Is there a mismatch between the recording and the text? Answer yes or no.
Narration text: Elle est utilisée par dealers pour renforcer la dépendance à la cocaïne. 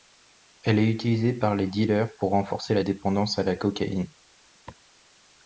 yes